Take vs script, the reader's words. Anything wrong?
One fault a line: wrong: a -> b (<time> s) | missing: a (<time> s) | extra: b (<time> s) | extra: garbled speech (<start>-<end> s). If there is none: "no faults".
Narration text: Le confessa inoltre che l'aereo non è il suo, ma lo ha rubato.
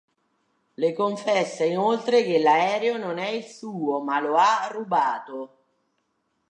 no faults